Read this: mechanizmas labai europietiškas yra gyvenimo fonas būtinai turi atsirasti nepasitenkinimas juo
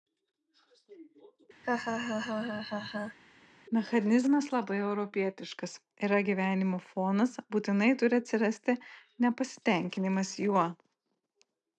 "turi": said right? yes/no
yes